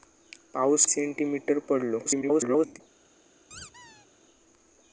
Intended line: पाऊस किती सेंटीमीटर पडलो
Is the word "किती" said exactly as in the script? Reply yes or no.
no